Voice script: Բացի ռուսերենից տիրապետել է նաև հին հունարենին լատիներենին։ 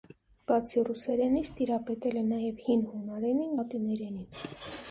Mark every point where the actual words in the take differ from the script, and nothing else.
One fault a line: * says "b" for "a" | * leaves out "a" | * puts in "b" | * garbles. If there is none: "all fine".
all fine